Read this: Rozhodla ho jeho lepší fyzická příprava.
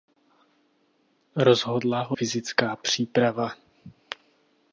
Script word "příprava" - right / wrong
right